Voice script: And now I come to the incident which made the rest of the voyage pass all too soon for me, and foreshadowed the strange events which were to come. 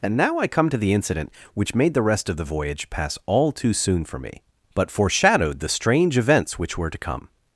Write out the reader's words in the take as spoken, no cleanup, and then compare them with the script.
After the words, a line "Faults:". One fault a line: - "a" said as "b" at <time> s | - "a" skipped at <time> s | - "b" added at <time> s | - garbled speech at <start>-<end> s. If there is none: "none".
And now I come to the incident which made the rest of the voyage pass all too soon for me, but foreshadowed the strange events which were to come.
Faults:
- "and" said as "but" at 4.7 s